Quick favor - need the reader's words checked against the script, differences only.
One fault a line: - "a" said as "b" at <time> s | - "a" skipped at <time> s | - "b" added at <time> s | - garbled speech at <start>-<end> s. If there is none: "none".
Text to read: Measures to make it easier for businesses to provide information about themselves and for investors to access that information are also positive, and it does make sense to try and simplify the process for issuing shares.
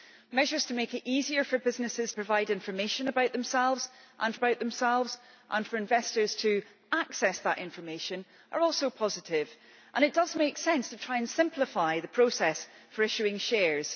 - "to" skipped at 2.1 s
- "about themselves and" added at 4.3 s